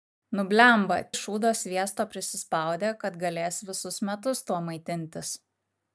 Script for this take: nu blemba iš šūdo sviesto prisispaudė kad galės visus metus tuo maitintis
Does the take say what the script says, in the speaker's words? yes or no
yes